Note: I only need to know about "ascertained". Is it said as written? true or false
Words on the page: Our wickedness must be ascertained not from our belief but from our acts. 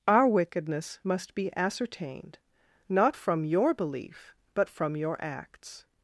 true